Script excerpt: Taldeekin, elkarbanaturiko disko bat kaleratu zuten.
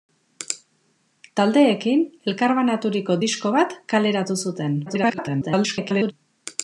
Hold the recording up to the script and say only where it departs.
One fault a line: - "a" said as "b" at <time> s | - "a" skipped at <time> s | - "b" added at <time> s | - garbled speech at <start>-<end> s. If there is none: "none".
- garbled speech at 4.9-6.1 s